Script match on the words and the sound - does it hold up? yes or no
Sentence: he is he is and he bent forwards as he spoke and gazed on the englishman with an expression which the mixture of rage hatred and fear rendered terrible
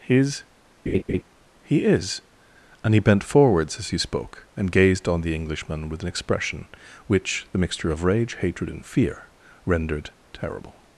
no